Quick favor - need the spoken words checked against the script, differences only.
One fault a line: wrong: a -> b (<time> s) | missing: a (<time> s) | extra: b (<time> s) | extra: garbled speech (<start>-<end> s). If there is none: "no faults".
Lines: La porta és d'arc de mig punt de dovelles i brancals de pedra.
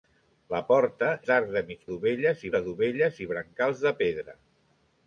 missing: és (1.1 s)
wrong: punt -> dovelles (1.9 s)